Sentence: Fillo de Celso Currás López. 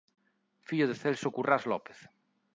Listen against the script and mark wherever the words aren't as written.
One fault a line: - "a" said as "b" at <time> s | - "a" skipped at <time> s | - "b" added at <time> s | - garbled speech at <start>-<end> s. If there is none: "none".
none